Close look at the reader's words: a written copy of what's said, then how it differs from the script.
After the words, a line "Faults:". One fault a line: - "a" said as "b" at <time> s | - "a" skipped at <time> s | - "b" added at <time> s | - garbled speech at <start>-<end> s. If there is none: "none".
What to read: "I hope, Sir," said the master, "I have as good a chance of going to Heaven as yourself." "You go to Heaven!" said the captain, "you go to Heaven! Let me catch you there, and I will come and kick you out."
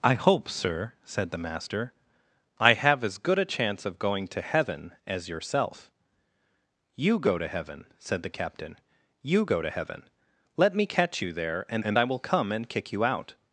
"I hope, Sir," said the master, "I have as good a chance of going to Heaven as yourself." "You go to Heaven!" said the captain, "you go to Heaven! Let me catch you there, and and I will come and kick you out."
Faults:
- "and" added at 11.8 s